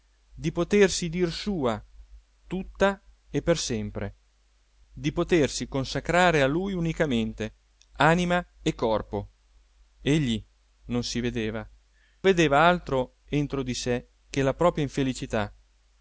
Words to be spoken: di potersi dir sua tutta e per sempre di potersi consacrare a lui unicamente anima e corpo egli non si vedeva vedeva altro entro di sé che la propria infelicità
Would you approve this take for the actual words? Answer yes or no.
yes